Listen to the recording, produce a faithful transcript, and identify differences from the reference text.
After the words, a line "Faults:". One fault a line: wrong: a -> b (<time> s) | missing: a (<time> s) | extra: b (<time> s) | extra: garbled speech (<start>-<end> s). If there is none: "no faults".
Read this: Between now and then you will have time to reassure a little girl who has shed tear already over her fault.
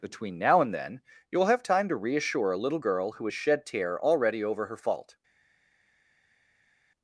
Between now and then you will have time to reassure a little girl who has shed tear already over her fault.
Faults:
no faults